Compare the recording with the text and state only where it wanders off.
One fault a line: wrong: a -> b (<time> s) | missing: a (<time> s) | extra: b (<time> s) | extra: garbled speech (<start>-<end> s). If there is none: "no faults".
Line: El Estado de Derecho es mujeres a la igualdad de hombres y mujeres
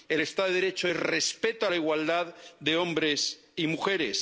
wrong: mujeres -> respeto (1.0 s)